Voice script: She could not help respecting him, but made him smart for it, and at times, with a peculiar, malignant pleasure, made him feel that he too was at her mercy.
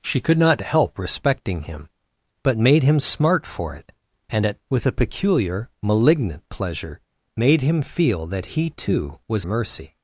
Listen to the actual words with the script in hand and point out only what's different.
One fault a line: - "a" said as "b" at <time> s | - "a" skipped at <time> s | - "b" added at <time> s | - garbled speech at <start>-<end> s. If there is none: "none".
- "times" skipped at 4.6 s
- "at her" skipped at 9.5 s